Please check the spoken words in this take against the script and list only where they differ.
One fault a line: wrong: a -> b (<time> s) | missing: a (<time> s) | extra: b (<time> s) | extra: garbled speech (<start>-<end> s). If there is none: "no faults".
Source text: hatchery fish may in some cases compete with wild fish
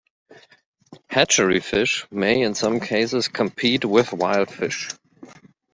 no faults